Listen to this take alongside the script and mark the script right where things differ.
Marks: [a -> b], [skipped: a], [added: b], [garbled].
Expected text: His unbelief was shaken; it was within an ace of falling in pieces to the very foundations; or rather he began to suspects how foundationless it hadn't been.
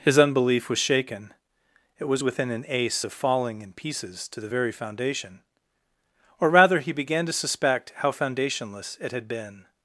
His unbelief was shaken; it was within an ace of falling in pieces to the very [foundations; -> foundation] or rather he began to [suspects -> suspect] how foundationless it [hadn't -> had] been.